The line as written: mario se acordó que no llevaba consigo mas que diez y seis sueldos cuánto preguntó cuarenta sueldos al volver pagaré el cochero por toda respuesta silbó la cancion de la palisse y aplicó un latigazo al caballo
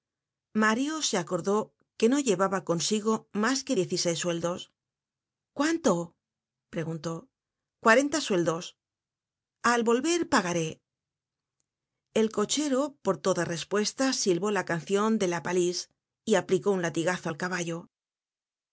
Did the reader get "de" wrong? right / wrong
right